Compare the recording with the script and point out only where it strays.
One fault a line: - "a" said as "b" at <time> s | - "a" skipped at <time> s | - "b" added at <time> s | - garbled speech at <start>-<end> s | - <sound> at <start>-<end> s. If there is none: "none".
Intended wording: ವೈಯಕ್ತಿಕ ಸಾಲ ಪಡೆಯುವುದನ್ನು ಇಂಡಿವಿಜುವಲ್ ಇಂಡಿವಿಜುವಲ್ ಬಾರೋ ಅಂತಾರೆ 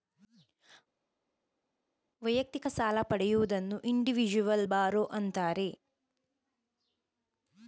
- "ಇಂಡಿವಿಜುವಲ್" skipped at 4.7 s